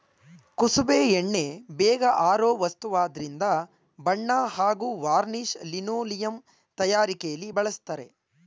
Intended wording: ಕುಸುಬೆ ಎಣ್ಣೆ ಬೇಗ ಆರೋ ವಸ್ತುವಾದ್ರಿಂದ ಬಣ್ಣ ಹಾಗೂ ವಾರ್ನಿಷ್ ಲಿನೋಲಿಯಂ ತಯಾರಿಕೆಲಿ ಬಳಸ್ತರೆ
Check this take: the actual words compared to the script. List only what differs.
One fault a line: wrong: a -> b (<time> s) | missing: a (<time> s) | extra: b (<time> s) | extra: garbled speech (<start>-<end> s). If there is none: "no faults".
no faults